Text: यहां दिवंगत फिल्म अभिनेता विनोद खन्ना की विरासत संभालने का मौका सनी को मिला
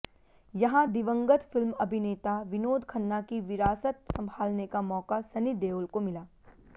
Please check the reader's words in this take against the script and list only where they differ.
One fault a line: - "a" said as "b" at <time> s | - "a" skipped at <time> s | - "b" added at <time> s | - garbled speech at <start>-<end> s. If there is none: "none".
- "देओल" added at 5.6 s